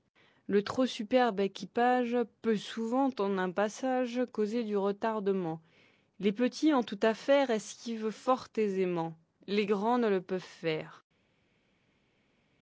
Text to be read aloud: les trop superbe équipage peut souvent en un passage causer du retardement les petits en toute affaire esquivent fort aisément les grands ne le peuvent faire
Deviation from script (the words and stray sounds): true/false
true